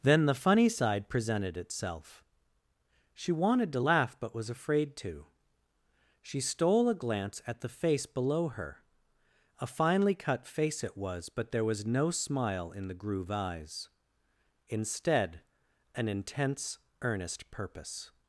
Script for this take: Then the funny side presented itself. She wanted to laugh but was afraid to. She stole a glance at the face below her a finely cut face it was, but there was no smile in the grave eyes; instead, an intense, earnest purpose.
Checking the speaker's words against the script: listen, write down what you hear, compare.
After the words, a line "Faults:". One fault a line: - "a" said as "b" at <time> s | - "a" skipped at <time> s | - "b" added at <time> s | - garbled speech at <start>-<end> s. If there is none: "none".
Then the funny side presented itself. She wanted to laugh but was afraid to. She stole a glance at the face below her a finely cut face it was, but there was no smile in the groove eyes; instead, an intense, earnest purpose.
Faults:
- "grave" said as "groove" at 12.9 s